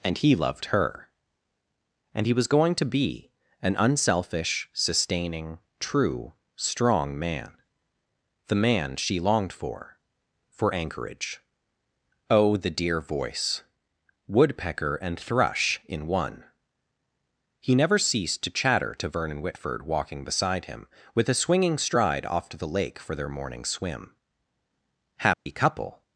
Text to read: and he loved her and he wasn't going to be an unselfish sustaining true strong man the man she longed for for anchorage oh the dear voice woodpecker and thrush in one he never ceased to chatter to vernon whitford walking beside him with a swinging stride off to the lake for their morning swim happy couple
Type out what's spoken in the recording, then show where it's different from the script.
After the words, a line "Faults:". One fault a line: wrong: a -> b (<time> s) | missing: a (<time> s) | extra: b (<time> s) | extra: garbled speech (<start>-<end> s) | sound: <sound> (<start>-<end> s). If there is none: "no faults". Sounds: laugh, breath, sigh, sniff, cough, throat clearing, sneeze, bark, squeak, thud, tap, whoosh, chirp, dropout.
and he loved her and he was going to be an unselfish sustaining true strong man the man she longed for for anchorage oh the dear voice woodpecker and thrush in one he never ceased to chatter to vernon whitford walking beside him with a swinging stride off to the lake for their morning swim happy couple
Faults:
wrong: wasn't -> was (2.3 s)
sound: dropout (25.3-25.5 s)